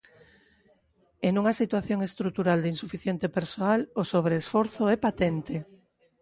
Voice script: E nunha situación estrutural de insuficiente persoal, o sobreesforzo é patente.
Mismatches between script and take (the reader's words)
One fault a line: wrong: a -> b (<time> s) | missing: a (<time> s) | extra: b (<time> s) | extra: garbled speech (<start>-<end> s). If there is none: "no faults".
no faults